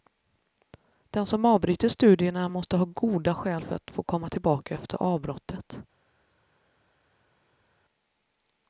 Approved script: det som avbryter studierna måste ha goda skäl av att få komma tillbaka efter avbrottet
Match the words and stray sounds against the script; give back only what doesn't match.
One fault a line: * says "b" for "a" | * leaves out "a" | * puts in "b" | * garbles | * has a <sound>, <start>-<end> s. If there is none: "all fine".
* says "den" for "det"
* says "för" for "av"